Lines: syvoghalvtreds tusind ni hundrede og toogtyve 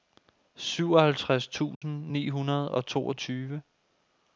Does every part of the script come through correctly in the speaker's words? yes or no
yes